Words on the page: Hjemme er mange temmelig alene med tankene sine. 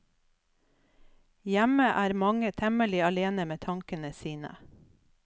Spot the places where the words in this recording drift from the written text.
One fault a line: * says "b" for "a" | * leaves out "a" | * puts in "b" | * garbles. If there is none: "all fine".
all fine